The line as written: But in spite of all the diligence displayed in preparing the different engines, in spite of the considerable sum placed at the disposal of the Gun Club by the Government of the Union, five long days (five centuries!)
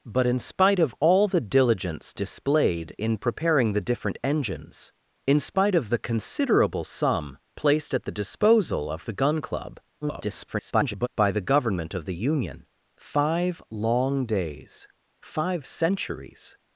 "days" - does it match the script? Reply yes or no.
yes